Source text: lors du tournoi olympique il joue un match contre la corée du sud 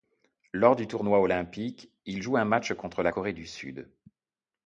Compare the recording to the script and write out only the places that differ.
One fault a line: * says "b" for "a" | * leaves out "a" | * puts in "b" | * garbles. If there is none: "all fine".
all fine